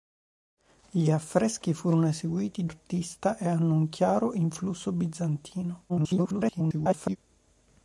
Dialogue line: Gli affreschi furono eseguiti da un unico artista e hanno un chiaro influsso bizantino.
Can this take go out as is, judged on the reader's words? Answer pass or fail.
fail